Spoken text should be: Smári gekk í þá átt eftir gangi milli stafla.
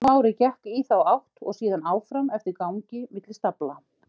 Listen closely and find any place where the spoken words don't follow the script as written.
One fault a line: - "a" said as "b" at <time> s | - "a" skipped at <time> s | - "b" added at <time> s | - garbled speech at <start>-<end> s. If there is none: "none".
- "og síðan áfram" added at 1.4 s